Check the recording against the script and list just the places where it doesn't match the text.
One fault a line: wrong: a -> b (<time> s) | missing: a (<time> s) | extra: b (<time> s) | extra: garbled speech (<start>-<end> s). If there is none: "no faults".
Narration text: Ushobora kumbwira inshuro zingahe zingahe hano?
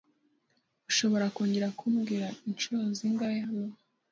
extra: kongera (1.4 s)
missing: zingahe (3.4 s)